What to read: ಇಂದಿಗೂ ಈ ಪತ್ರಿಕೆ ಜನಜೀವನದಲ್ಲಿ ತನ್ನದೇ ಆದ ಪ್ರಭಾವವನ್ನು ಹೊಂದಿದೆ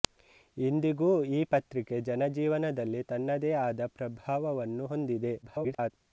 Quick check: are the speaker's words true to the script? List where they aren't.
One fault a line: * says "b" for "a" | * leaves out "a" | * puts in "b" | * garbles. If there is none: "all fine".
* garbles